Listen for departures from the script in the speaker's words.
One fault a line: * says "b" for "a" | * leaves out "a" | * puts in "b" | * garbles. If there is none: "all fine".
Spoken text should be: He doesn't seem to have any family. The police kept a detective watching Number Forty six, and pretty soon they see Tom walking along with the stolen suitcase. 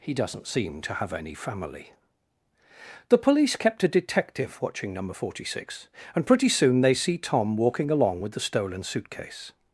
all fine